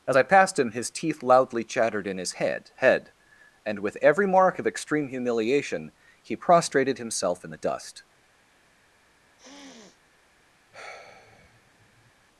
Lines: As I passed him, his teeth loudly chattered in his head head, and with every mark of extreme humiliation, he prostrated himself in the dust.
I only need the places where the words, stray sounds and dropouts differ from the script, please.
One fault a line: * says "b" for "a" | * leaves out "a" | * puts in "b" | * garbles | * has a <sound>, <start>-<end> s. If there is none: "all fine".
* has a sniff, 9.4-10.0 s
* has a sigh, 10.7-12.1 s